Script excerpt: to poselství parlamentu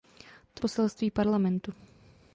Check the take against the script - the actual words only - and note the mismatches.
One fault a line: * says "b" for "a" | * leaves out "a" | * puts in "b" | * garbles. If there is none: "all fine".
all fine